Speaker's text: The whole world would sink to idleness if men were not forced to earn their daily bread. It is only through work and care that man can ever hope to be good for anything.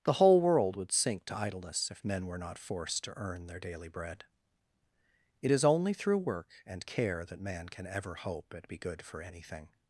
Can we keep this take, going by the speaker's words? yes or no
no